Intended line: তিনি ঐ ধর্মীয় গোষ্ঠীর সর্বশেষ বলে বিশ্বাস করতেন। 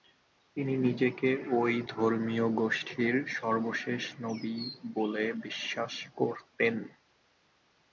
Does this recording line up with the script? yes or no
no